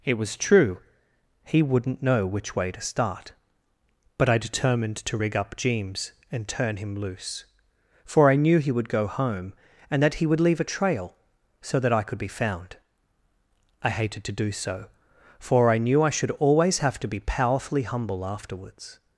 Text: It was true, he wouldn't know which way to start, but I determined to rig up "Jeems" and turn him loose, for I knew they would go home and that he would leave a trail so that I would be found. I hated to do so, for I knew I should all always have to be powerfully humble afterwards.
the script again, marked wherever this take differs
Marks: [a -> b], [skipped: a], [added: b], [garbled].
It was true, he wouldn't know which way to start, but I determined to rig up "Jeems" and turn him loose, for I knew [they -> he] would go home and that he would leave a trail so that I [would -> could] be found. I hated to do so, for I knew I should [skipped: all] always have to be powerfully humble afterwards.